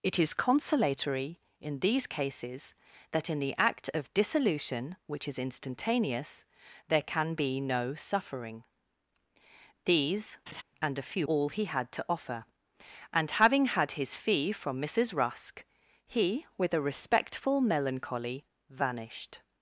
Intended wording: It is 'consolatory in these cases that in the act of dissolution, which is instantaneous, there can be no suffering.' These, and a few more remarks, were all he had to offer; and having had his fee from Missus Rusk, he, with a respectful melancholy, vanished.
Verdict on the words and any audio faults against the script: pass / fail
fail